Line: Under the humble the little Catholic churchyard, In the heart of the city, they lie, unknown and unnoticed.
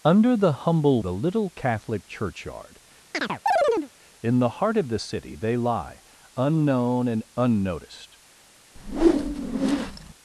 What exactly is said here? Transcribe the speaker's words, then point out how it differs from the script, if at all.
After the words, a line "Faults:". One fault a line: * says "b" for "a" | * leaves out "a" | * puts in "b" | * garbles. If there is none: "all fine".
Under the humble the little Catholic churchyard, In the heart of the city, they lie, unknown and unnoticed.
Faults:
all fine